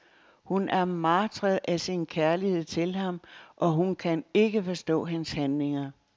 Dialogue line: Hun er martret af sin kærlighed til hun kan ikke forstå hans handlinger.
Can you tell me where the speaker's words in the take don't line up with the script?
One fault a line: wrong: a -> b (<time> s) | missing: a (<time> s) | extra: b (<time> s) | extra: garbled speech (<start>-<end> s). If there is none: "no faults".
extra: ham og (2.9 s)